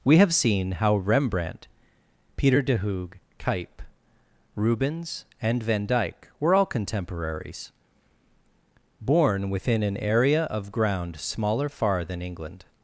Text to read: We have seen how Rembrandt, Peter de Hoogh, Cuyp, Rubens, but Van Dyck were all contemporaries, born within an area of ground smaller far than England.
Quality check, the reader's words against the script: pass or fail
fail